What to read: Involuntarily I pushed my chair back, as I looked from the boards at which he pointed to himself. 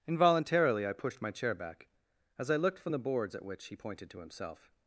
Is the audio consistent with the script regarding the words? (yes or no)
yes